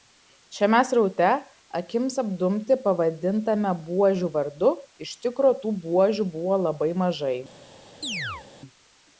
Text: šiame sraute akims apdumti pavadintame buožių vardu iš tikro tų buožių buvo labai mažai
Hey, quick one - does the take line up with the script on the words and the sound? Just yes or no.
no